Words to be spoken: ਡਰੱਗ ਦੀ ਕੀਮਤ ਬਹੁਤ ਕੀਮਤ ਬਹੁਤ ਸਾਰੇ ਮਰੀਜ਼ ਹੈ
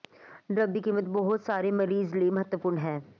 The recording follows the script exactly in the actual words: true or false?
false